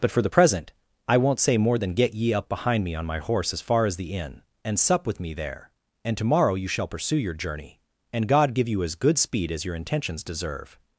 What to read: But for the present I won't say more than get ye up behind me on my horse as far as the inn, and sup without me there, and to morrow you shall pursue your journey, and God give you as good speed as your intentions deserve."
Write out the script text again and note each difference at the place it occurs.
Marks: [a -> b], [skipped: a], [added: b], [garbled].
But for the present I won't say more than get ye up behind me on my horse as far as the inn, and sup [without -> with] me there, and to morrow you shall pursue your journey, and God give you as good speed as your intentions deserve."